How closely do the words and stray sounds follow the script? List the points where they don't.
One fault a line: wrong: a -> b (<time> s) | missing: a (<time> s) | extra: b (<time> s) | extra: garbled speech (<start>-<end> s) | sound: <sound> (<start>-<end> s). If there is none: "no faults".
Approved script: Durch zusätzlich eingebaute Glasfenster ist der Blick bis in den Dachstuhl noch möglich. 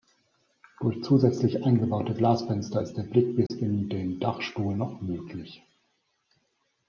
sound: dropout (3.5-3.5 s)